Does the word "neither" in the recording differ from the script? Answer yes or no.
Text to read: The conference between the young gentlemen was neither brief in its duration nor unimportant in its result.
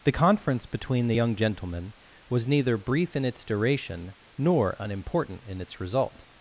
no